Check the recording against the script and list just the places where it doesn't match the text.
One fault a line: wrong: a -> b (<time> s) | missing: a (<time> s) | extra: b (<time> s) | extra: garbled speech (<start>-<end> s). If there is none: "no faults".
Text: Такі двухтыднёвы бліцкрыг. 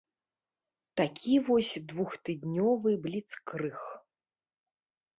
extra: вось (1.5 s)